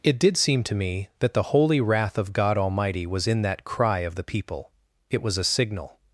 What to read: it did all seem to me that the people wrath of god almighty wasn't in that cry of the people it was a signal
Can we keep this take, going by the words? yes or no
no